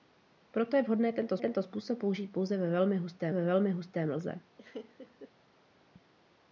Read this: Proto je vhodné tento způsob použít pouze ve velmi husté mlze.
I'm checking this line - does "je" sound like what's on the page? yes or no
yes